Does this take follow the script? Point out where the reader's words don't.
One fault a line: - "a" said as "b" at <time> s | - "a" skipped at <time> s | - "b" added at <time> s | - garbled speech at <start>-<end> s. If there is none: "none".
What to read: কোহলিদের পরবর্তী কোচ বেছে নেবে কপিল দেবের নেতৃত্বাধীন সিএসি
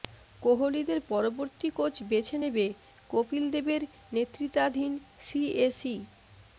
none